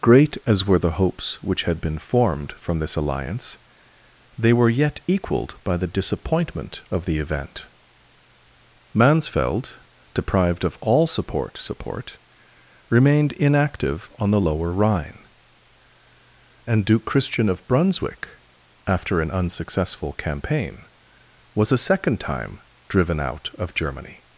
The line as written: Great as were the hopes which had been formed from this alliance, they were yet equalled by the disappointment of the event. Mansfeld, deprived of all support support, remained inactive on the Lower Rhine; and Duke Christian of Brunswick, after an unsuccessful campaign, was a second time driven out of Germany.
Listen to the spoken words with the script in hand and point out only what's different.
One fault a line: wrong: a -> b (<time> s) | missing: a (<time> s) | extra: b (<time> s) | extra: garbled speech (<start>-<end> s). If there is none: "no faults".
no faults